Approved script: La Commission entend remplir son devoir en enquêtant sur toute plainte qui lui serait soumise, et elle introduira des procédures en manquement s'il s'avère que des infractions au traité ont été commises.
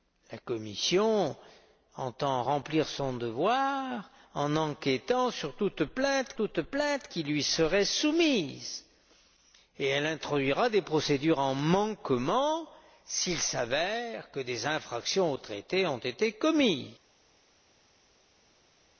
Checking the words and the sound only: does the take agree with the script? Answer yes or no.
no